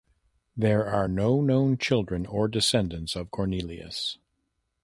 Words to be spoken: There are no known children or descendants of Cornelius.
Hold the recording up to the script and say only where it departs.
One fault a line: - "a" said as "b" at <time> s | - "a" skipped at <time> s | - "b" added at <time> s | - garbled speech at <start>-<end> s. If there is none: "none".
none